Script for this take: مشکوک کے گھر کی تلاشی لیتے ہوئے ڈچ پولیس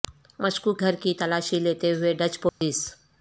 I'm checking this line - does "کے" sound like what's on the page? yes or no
no